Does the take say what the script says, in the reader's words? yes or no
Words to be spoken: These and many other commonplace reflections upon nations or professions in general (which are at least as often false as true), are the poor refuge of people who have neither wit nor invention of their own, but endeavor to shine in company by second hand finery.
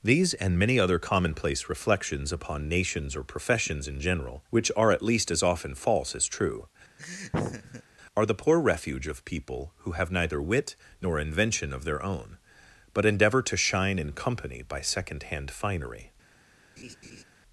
yes